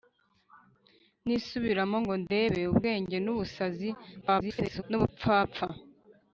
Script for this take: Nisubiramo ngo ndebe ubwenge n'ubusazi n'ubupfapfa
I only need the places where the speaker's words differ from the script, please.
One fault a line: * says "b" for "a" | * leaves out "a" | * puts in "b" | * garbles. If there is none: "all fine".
* garbles